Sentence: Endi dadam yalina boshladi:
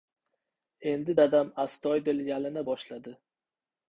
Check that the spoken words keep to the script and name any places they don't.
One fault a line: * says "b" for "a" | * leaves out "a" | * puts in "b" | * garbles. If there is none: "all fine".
* puts in "astoydil"